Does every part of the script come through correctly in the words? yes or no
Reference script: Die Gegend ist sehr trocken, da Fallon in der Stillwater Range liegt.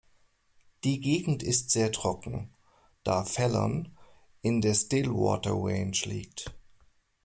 yes